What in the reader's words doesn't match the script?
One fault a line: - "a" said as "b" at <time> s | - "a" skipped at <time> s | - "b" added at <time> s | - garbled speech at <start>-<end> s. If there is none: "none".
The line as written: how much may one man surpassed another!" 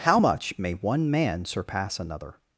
- "surpassed" said as "surpass" at 1.4 s